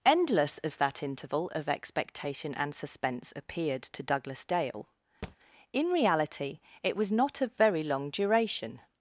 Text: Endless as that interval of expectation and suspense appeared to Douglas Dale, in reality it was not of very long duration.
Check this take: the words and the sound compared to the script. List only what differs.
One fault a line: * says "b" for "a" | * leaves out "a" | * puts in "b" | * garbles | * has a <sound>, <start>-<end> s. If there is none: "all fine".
* has a thud, 5.2-5.4 s